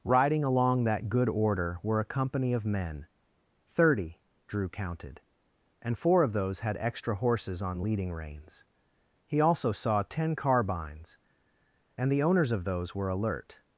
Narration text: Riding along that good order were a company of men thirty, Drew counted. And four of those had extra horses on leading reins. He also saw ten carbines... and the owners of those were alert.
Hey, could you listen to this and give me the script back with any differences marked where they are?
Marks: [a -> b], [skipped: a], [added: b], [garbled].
Riding along that good order were a company of men thirty, Drew counted. And four of those had extra horses on leading reins. He also saw ten carbines... and the owners of those were alert.